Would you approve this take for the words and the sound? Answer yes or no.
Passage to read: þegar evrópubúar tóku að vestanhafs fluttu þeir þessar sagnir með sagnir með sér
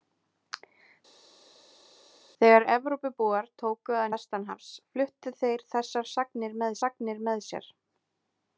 yes